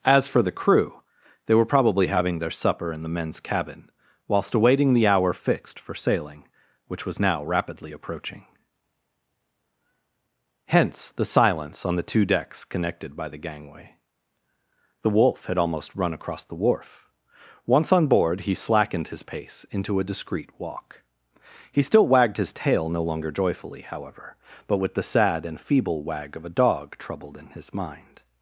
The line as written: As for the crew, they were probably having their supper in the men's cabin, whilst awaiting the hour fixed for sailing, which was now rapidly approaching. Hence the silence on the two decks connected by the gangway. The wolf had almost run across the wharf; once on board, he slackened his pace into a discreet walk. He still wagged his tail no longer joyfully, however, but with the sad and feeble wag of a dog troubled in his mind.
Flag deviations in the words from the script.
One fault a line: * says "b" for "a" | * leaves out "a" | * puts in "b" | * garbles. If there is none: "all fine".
all fine